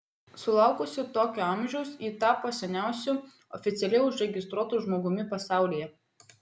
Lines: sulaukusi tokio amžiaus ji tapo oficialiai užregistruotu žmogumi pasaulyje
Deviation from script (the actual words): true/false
true